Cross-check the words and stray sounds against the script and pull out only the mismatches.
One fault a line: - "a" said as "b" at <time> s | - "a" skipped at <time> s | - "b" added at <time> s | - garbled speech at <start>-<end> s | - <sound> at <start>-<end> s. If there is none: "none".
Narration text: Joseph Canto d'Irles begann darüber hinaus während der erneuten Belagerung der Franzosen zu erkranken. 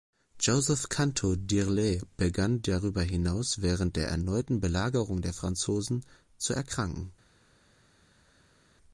none